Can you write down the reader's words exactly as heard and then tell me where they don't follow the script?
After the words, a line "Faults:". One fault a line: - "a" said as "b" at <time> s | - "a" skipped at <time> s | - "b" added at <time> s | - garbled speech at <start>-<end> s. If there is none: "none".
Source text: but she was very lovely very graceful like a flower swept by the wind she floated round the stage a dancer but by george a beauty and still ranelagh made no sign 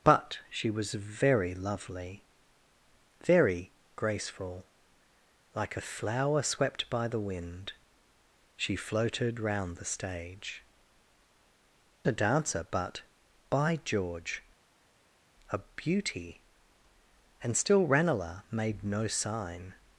but she was very lovely very graceful like a flower swept by the wind she floated round the stage a dancer but by george a beauty and still ranelagh made no sign
Faults:
none